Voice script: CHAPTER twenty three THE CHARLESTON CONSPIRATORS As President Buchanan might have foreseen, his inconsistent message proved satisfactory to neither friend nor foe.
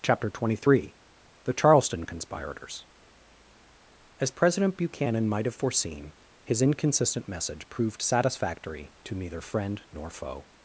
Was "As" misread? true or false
false